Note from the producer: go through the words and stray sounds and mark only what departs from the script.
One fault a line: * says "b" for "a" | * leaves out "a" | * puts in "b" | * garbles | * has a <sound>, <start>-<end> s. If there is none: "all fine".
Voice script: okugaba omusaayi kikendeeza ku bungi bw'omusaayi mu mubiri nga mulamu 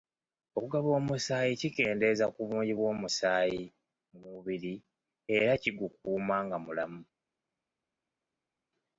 * puts in "era kigukuuma"